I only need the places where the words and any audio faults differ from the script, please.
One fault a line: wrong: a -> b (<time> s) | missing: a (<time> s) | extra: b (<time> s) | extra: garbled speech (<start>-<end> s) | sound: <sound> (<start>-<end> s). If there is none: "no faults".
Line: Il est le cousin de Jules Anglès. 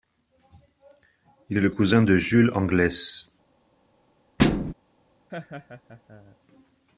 sound: thud (4.4-4.7 s)
sound: laugh (5.3-6.4 s)